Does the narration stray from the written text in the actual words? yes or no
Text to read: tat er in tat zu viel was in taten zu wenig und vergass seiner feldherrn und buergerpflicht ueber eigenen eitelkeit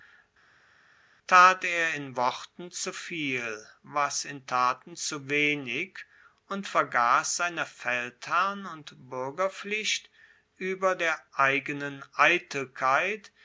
yes